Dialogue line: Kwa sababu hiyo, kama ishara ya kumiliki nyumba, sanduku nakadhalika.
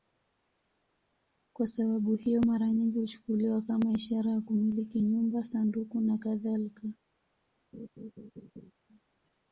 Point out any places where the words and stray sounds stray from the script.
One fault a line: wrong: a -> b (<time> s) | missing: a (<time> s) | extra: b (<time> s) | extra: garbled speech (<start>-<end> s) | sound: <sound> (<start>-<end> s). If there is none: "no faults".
extra: mara nyingi huchukuliwa (2.4 s)
sound: laugh (7.7-8.7 s)